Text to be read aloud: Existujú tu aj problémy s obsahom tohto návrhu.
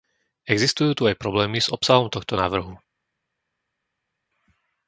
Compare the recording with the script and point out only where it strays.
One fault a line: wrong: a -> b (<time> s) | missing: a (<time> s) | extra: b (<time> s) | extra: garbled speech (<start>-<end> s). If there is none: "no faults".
no faults